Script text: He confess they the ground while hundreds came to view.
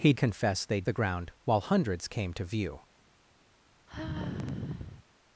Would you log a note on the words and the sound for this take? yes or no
yes